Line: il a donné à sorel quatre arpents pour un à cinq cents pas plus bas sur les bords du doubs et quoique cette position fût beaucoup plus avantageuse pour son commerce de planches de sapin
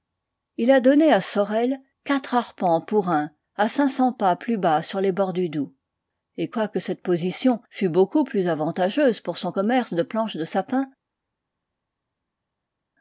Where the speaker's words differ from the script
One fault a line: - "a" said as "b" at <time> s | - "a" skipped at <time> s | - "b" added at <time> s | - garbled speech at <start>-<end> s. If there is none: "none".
none